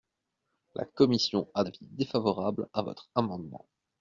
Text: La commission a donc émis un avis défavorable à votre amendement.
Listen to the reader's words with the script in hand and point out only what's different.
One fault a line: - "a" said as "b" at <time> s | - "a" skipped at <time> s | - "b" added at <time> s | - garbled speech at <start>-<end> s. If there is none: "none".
- "donc émis un" skipped at 1.6 s